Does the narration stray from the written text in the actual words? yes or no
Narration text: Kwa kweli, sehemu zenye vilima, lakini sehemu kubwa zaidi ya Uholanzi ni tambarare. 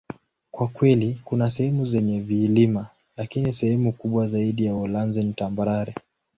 yes